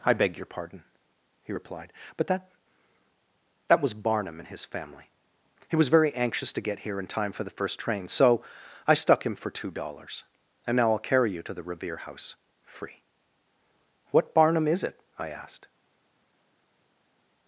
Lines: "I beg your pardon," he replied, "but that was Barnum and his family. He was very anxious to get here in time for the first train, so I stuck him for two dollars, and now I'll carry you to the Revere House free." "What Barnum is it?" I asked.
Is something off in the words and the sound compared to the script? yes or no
yes